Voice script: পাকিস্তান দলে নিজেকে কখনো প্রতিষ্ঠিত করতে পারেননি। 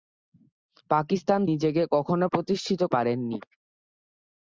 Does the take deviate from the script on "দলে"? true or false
true